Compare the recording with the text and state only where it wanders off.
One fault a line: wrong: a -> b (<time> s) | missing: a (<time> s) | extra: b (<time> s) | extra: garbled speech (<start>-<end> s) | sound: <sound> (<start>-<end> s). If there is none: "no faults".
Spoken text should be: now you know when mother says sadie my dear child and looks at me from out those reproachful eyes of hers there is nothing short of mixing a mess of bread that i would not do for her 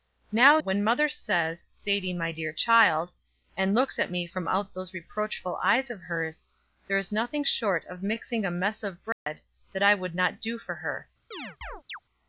missing: you know (0.6 s)
sound: dropout (9.1-9.3 s)
sound: chirp (11.3-12.0 s)